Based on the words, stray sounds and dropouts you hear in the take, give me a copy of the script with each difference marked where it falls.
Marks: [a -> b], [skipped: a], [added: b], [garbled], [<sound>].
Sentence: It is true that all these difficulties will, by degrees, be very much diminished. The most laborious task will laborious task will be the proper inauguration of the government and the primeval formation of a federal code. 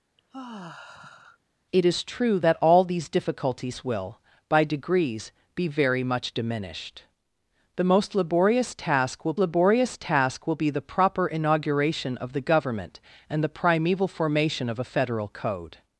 [sigh] It is true that all these difficulties will, by degrees, be very much diminished. The most laborious task will laborious task will be the proper inauguration of the government and the primeval formation of a federal code.